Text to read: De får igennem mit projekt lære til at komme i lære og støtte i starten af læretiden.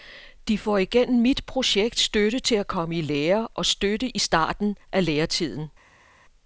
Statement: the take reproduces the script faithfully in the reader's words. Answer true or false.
false